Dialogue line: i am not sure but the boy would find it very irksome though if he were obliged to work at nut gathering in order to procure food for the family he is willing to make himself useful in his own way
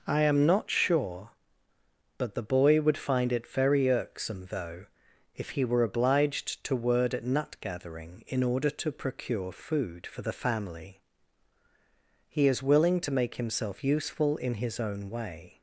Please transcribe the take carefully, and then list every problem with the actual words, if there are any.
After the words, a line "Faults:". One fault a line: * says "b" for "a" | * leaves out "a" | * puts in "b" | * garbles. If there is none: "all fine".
i am not sure but the boy would find it very irksome though if he were obliged to word at nut gathering in order to procure food for the family he is willing to make himself useful in his own way
Faults:
* says "word" for "work"